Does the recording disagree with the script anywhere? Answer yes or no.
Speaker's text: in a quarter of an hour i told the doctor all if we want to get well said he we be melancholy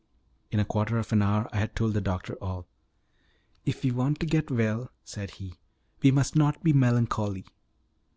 yes